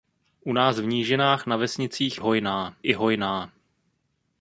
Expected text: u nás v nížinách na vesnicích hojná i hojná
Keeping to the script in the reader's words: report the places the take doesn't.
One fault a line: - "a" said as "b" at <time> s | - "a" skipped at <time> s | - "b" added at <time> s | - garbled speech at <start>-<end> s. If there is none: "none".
none